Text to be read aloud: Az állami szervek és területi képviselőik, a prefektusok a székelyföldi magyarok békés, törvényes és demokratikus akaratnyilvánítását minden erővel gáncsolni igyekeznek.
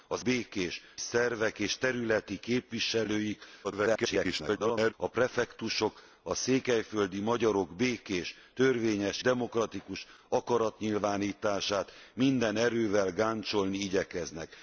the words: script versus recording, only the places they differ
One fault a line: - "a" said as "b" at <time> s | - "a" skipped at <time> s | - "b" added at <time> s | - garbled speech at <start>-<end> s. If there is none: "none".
- "állami" said as "békés" at 0.2 s
- garbled speech at 3.6-4.9 s
- "és" skipped at 9.2 s